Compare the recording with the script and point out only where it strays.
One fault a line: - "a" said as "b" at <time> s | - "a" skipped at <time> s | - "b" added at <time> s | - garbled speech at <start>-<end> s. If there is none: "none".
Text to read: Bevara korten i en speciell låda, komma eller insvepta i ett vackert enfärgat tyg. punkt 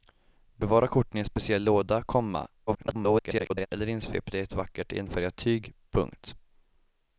- garbled speech at 2.7-3.7 s